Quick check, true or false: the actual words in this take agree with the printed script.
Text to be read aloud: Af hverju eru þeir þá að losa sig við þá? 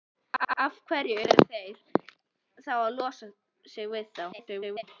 false